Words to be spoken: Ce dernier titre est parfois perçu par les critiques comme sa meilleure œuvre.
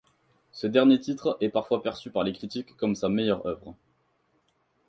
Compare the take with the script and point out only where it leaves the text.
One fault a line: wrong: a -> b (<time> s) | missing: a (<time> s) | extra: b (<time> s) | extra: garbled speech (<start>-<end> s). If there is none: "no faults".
no faults